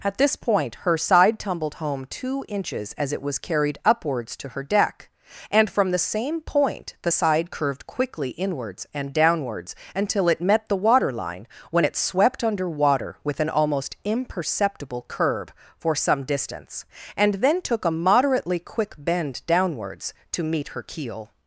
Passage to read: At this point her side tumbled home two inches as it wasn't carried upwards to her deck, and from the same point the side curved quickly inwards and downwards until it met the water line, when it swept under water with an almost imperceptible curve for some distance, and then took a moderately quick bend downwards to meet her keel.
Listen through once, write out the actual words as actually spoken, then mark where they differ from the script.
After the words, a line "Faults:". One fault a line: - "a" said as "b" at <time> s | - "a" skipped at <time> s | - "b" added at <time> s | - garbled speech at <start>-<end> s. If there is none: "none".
At this point her side tumbled home two inches as it was carried upwards to her deck, and from the same point the side curved quickly inwards and downwards until it met the water line, when it swept under water with an almost imperceptible curve for some distance, and then took a moderately quick bend downwards to meet her keel.
Faults:
- "wasn't" said as "was" at 3.2 s